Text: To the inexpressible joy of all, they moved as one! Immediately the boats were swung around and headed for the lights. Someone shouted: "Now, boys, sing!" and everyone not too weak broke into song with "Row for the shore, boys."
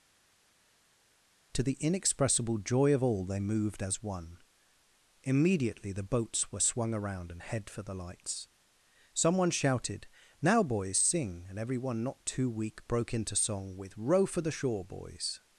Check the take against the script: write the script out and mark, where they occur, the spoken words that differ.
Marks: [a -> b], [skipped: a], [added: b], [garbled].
To the inexpressible joy of all, they moved as one! Immediately the boats were swung around and [headed -> head] for the lights. Someone shouted: "Now, boys, sing!" and everyone not too weak broke into song with "Row for the shore, boys."